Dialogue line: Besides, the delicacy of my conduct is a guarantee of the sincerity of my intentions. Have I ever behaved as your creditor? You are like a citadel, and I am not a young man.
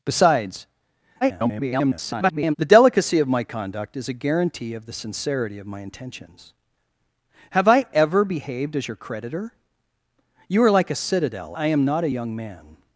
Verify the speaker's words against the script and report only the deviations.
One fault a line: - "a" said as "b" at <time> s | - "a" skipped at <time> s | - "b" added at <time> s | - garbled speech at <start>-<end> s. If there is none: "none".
- garbled speech at 1.2-2.6 s
- "and" skipped at 11.6 s